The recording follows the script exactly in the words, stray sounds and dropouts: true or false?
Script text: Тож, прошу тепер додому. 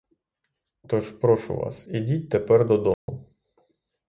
false